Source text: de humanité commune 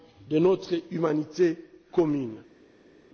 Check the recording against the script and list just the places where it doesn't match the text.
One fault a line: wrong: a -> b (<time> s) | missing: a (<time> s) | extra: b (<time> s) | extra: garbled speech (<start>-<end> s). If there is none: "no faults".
extra: notre (0.4 s)